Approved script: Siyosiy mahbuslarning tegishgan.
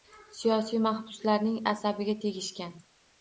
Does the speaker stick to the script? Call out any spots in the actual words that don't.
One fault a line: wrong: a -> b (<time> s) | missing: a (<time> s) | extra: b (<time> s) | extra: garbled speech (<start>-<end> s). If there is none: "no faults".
extra: asabiga (1.7 s)